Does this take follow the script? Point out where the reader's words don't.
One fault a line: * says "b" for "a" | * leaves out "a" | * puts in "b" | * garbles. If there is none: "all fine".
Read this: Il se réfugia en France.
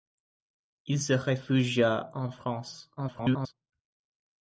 * garbles